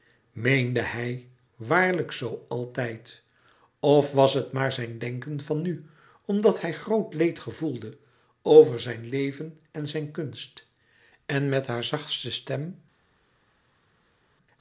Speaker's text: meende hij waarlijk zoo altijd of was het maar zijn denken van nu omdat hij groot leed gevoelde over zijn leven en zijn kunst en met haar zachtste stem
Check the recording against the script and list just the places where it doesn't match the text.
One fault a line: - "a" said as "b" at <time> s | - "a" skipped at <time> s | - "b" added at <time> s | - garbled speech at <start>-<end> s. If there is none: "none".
none